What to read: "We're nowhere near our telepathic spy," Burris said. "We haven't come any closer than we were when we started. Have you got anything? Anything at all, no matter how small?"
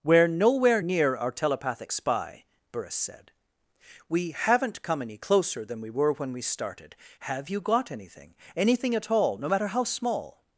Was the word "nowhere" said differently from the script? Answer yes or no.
no